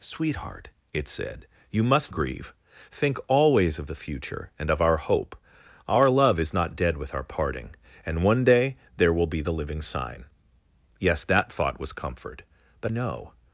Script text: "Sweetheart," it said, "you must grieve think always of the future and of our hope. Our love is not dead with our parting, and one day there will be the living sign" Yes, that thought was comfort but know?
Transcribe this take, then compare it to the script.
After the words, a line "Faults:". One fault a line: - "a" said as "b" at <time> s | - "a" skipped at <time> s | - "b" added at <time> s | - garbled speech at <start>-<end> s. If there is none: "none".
"Sweetheart," it said, "you must grieve think always of the future and of our hope. Our love is not dead with our parting, and one day there will be the living sign" Yes, that thought was comfort but know?
Faults:
none